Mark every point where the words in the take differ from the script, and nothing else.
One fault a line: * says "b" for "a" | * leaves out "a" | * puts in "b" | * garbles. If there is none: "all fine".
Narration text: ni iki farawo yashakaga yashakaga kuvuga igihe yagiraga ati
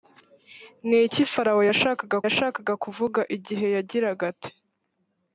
all fine